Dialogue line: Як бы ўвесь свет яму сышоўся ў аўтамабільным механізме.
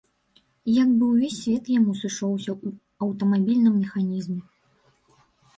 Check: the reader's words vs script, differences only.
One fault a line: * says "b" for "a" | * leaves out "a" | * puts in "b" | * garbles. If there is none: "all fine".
all fine